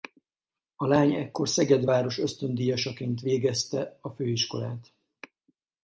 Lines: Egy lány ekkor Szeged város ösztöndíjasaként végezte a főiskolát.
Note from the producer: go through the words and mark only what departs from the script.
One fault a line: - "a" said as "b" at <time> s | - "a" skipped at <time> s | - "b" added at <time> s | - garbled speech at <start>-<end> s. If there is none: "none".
- "Egy" said as "A" at 0.8 s